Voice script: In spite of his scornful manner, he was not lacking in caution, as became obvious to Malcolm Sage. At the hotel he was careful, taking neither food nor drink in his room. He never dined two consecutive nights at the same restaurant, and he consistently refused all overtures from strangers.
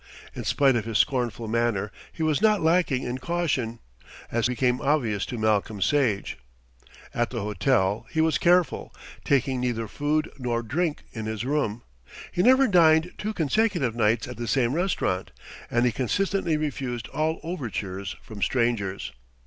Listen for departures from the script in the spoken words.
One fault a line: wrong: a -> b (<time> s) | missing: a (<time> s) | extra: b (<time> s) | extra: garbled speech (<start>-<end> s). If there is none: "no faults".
no faults